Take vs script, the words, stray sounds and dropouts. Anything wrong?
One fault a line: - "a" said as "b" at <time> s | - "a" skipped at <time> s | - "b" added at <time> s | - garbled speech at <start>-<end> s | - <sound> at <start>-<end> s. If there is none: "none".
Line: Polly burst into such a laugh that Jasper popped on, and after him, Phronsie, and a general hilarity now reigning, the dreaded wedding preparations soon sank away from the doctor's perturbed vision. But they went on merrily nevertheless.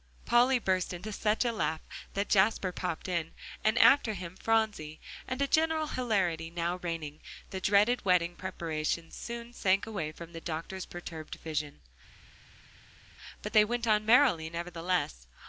- "on" said as "in" at 3.1 s